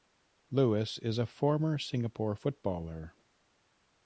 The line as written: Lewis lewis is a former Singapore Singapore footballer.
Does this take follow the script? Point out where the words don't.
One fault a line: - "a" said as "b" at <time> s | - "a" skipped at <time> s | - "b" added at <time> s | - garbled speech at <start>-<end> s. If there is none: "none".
- "lewis" skipped at 1.0 s
- "Singapore" skipped at 2.4 s